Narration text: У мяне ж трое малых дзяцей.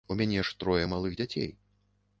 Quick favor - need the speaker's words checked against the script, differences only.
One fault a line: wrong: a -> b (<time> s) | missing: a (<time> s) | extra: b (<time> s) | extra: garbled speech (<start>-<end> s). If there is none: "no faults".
no faults